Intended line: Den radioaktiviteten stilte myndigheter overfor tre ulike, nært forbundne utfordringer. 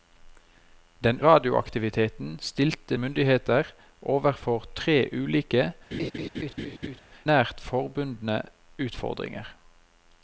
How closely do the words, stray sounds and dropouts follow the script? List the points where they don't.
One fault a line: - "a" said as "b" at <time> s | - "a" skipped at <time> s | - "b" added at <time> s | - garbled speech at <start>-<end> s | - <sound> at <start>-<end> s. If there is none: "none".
- laugh at 5.9-7.0 s